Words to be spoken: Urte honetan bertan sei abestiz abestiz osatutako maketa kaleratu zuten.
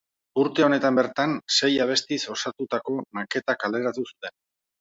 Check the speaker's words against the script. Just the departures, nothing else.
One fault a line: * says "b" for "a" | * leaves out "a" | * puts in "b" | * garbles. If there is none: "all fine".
* leaves out "abestiz"